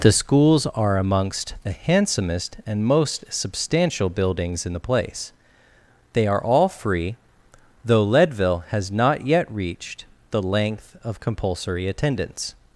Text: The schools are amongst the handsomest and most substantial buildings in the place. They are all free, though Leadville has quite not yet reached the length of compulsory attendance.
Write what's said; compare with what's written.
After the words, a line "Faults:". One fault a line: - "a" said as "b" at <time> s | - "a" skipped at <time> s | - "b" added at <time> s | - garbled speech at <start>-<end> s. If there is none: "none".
The schools are amongst the handsomest and most substantial buildings in the place. They are all free, though Leadville has not yet reached the length of compulsory attendance.
Faults:
- "quite" skipped at 8.9 s